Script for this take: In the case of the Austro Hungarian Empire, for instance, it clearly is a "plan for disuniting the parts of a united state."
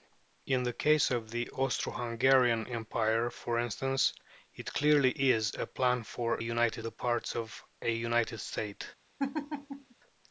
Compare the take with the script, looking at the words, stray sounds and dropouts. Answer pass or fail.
fail